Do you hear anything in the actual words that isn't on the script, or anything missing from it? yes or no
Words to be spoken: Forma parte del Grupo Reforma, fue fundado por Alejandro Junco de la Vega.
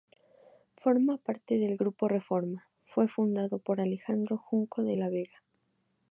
no